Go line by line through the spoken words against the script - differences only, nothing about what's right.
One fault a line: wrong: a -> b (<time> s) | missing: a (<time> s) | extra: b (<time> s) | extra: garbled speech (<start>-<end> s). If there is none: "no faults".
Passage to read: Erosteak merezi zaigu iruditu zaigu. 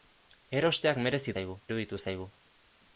no faults